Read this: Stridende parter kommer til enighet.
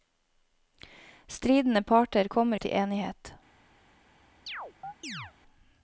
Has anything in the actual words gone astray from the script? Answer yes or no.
no